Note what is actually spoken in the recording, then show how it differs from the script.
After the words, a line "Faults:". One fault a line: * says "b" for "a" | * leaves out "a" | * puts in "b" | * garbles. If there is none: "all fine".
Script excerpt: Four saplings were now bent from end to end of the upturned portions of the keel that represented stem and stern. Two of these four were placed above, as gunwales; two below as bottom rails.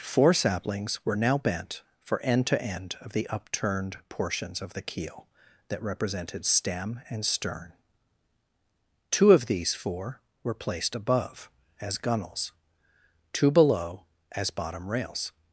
Four saplings were now bent for end to end of the upturned portions of the keel that represented stem and stern. Two of these four were placed above, as gunwales; two below as bottom rails.
Faults:
* says "for" for "from"